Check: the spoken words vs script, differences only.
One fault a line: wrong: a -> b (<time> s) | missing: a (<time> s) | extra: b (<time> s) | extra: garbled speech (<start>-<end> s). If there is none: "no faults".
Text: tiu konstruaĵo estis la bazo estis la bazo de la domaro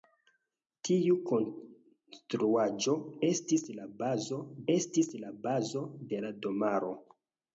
no faults